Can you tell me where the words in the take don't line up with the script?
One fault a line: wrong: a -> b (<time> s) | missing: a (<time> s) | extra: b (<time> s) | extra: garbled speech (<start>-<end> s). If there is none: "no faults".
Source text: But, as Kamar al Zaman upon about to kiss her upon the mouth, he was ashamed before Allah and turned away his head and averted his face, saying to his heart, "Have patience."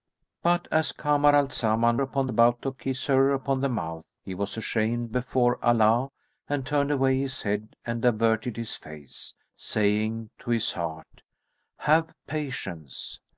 no faults